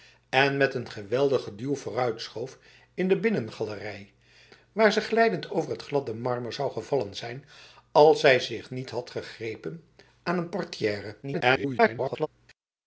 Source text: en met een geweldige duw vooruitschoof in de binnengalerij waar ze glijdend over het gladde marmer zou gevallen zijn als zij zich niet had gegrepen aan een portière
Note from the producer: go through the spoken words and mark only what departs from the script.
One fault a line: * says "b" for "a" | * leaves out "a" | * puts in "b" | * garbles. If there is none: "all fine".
* garbles